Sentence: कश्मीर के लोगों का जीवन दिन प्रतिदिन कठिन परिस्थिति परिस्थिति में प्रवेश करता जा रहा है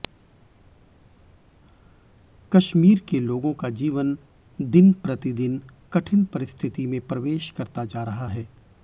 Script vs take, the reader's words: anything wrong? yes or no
yes